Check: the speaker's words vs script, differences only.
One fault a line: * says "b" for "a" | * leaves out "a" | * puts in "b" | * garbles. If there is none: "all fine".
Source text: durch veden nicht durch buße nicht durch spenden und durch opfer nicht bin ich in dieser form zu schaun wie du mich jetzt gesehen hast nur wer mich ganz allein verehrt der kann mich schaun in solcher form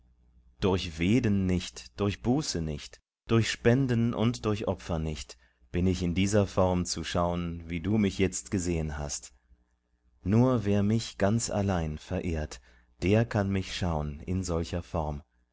all fine